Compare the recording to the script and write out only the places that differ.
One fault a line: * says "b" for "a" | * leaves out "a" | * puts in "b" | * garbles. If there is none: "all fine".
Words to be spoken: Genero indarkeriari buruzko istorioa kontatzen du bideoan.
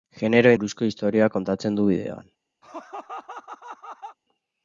* leaves out "indarkeriari"